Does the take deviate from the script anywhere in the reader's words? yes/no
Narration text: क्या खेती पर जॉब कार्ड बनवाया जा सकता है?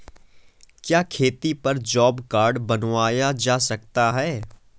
no